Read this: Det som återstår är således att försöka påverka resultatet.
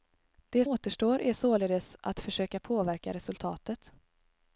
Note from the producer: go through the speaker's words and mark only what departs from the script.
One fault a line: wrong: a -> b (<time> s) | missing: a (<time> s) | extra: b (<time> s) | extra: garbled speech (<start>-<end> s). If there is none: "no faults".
missing: som (0.7 s)